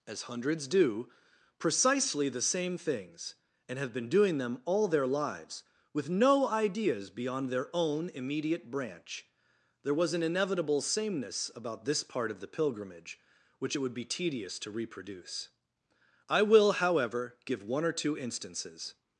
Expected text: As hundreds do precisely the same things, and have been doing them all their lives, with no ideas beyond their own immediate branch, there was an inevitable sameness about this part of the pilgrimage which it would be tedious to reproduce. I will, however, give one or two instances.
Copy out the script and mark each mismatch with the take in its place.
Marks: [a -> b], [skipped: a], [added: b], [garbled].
As hundreds do precisely the same things, and have been doing them all their lives, with no ideas beyond their own immediate branch, there was an inevitable sameness about this part of the pilgrimage which it would be tedious to reproduce. I will, however, give one or two instances.